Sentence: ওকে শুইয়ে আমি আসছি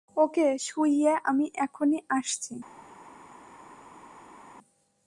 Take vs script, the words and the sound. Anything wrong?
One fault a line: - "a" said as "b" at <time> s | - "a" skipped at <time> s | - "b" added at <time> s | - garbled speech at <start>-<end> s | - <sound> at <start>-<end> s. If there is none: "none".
- "এখনই" added at 1.6 s